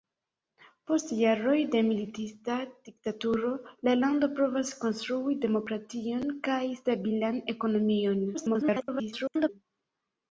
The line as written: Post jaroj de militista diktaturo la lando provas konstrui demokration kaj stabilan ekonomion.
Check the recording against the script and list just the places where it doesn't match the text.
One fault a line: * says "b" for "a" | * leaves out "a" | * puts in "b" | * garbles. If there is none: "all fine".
* garbles